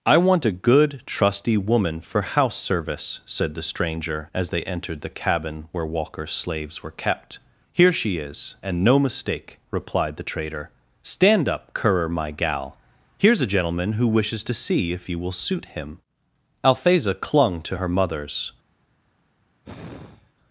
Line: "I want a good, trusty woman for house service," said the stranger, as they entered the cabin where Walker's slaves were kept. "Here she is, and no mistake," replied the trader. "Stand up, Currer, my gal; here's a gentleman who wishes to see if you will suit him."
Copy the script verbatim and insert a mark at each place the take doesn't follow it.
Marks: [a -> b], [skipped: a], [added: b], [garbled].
"I want a good, trusty woman for house service," said the stranger, as they entered the cabin where Walker's slaves were kept. "Here she is, and no mistake," replied the trader. "Stand up, Currer, my gal; here's a gentleman who wishes to see if you will suit him." [added: Althesa clung to her mother's]